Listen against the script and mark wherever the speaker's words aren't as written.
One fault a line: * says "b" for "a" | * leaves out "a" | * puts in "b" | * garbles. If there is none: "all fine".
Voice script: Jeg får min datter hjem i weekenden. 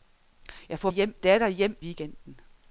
* says "hjem" for "min"
* leaves out "i"